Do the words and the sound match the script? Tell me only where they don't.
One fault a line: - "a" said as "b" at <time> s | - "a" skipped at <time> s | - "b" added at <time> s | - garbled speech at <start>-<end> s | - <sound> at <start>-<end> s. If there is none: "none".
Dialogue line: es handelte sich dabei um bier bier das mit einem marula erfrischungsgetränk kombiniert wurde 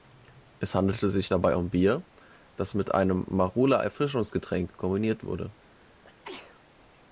- "bier" skipped at 2.0 s
- sneeze at 6.0-6.6 s